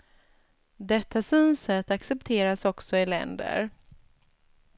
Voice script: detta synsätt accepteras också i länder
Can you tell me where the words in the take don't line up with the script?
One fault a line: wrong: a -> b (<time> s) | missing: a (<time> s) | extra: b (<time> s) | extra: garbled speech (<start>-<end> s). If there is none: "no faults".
no faults